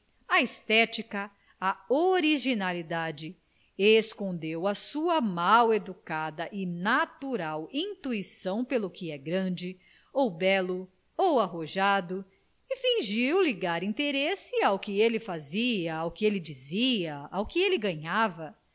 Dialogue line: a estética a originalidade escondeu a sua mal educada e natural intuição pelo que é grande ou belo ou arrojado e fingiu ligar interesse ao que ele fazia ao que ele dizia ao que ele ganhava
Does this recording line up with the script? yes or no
yes